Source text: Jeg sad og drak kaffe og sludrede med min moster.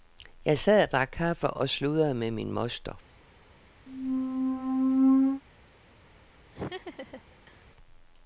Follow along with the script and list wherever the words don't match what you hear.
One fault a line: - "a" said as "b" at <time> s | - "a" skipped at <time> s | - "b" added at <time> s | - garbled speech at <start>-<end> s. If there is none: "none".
none